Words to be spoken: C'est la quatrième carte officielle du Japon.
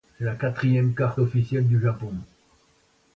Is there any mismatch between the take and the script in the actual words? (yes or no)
no